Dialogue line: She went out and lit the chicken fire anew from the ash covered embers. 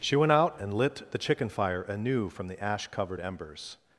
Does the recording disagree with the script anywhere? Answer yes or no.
no